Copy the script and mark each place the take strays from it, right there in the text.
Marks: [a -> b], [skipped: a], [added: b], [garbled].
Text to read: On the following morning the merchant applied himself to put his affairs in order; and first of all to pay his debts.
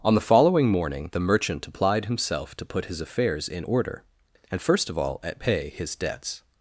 On the following morning the merchant applied himself to put his affairs in order; and first of all [to -> at] pay his debts.